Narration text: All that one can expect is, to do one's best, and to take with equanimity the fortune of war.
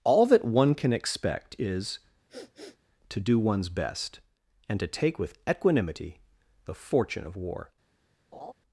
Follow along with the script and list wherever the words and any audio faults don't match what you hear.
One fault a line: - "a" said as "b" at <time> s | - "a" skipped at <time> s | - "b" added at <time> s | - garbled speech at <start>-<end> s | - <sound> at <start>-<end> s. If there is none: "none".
- sniff at 2.3-2.8 s
- laugh at 8.3-8.5 s